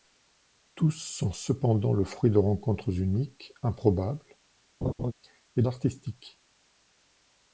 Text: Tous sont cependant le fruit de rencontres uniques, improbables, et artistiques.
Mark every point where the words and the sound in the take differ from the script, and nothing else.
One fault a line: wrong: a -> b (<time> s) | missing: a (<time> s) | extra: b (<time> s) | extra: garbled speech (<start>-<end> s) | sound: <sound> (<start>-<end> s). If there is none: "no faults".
sound: laugh (4.8-5.1 s)